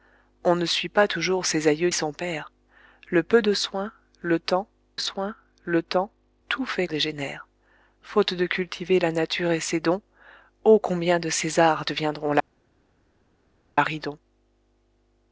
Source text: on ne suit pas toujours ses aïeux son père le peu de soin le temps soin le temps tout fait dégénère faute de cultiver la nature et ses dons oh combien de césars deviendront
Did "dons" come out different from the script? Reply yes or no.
no